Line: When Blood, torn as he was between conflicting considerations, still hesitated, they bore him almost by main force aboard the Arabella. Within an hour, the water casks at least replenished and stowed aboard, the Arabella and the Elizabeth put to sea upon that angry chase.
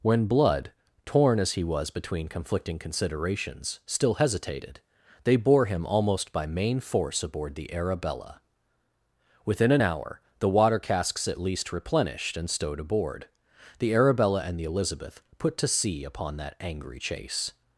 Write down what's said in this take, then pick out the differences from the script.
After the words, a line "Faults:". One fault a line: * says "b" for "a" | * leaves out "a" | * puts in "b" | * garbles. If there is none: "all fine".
When Blood, torn as he was between conflicting considerations, still hesitated, they bore him almost by main force aboard the Arabella. Within an hour, the water casks at least replenished and stowed aboard, the Arabella and the Elizabeth put to sea upon that angry chase.
Faults:
all fine